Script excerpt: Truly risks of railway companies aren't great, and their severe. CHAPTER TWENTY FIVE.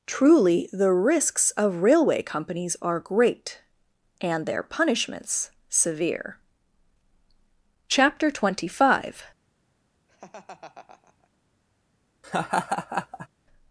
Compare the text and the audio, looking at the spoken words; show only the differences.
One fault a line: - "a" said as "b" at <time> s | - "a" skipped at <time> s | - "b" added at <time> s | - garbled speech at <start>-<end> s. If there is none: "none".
- "the" added at 0.7 s
- "aren't" said as "are" at 2.8 s
- "punishments" added at 4.6 s